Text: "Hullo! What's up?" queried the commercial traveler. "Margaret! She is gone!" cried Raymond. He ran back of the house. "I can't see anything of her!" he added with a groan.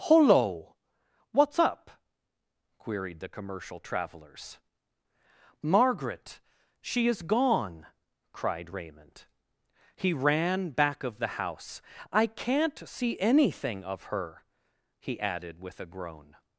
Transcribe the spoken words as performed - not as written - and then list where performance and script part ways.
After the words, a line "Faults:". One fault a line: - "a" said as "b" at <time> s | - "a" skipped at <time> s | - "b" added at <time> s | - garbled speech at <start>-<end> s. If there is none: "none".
"Hullo! What's up?" queried the commercial travelers. "Margaret! She is gone!" cried Raymond. He ran back of the house. "I can't see anything of her!" he added with a groan.
Faults:
- "traveler" said as "travelers" at 3.8 s